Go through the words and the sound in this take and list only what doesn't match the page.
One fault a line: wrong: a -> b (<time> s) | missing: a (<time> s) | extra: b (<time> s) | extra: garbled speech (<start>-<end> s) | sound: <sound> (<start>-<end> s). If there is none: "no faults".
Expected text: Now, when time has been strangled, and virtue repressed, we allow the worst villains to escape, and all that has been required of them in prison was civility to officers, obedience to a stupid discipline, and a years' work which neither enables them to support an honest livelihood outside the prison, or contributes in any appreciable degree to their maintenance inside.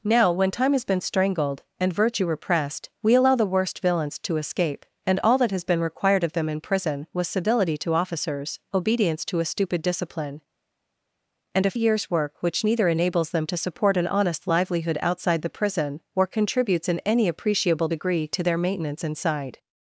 no faults